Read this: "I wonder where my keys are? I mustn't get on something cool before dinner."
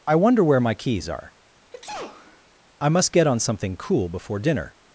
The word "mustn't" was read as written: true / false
false